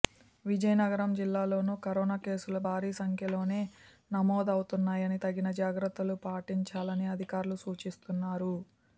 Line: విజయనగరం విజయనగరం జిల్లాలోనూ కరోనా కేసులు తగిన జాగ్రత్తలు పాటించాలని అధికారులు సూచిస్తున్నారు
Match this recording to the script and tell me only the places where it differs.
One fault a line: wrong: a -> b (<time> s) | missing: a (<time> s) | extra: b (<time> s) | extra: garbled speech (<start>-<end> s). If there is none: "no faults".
missing: విజయనగరం (1.1 s)
extra: భారీ సంఖ్యలోనే నమోదవుతున్నాయని (2.6 s)